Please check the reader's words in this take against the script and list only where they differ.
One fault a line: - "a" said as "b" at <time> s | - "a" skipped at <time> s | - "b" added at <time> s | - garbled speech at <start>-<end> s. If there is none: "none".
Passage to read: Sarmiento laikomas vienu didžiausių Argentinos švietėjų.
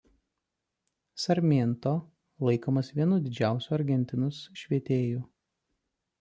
none